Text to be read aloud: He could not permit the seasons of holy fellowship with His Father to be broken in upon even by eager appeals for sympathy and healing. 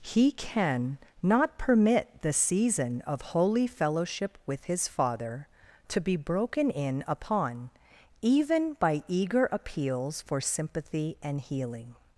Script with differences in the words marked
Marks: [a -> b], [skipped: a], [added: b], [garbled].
He [could -> can] not permit the [seasons -> season] of holy fellowship with His Father to be broken in upon even by eager appeals for sympathy and healing.